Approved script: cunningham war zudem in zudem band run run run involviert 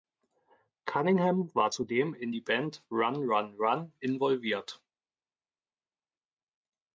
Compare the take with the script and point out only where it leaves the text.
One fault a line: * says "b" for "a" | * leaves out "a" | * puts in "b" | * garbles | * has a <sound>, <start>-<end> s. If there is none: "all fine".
* says "die" for "zudem"